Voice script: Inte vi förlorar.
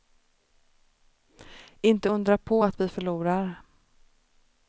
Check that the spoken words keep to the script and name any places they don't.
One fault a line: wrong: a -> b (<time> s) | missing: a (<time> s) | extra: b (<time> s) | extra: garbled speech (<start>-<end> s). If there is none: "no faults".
extra: undra på att (2.1 s)